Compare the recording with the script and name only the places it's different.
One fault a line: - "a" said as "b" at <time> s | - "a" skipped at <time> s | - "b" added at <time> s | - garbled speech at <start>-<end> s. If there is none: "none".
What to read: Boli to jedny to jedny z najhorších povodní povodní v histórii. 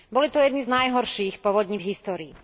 - "to jedny" skipped at 0.6 s
- "povodní" skipped at 1.8 s